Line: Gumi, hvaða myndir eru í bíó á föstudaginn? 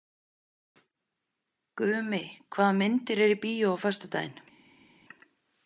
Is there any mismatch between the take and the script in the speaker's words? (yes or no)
no